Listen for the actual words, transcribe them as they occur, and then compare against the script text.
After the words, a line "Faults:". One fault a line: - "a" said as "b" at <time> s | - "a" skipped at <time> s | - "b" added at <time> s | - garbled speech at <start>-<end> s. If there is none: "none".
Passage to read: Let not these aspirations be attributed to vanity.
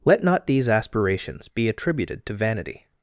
Let not these aspirations be attributed to vanity.
Faults:
none